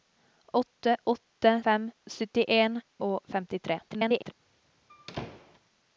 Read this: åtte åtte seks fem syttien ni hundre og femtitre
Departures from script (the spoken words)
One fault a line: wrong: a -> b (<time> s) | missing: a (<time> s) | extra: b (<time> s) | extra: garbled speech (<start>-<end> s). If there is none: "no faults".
missing: seks (1.6 s)
missing: ni hundre (2.8 s)
extra: garbled speech (3.9-4.3 s)